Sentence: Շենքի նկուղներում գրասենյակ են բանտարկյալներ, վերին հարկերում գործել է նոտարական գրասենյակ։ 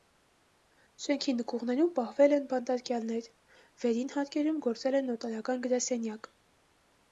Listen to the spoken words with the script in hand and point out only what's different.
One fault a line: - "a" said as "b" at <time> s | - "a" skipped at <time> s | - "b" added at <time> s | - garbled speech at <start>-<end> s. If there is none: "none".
- "գրասենյակ" said as "պահվել" at 2.0 s